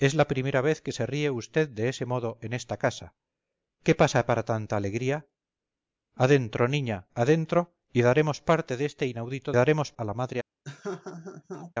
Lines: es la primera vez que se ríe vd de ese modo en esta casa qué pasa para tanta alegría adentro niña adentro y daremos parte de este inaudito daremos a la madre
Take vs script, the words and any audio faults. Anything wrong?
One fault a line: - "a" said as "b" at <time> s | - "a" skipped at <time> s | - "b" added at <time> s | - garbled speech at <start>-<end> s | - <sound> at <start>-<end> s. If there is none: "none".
- laugh at 10.6-11.7 s